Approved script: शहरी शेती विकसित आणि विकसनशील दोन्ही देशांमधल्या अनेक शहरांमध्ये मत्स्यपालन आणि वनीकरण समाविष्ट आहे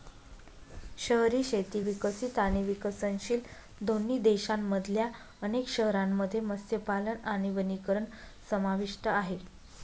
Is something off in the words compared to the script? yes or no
no